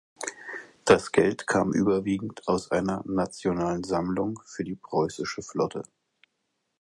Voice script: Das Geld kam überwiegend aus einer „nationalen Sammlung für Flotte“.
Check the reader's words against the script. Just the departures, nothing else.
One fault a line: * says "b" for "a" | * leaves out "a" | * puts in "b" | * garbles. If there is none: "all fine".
* puts in "die preußische"